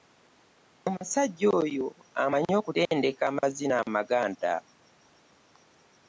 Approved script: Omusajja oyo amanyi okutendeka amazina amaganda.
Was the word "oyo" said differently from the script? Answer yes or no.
no